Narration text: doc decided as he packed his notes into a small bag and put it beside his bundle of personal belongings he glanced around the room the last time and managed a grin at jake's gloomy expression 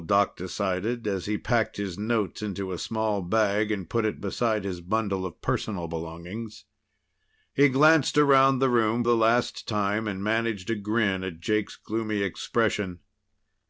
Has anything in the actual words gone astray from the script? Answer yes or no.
no